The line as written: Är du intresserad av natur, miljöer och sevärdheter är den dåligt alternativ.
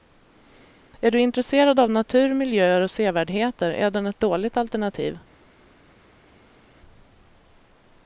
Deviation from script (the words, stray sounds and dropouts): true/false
true